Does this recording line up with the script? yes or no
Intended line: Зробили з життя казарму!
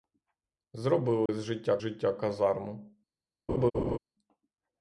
no